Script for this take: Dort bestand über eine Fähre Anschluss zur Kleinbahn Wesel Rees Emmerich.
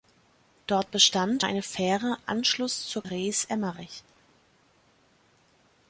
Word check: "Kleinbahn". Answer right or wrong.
wrong